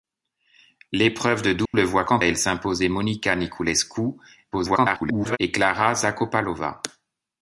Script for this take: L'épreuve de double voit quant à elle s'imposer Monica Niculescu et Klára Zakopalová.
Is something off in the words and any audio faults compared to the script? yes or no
yes